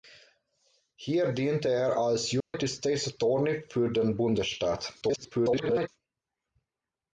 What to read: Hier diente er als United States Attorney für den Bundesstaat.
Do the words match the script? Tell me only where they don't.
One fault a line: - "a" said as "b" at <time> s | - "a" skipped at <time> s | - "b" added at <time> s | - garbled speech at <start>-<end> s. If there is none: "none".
- garbled speech at 5.0-5.9 s